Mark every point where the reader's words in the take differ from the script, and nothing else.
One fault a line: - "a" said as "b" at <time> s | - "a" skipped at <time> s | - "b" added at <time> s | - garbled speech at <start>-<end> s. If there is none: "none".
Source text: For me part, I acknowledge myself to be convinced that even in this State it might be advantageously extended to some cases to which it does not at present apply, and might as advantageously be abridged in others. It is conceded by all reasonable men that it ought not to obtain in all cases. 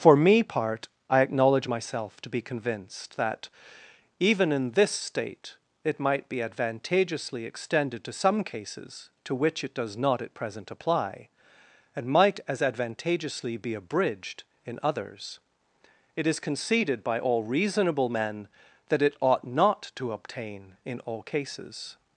none